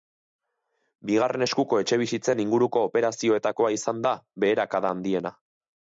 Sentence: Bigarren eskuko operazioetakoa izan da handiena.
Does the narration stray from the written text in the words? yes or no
yes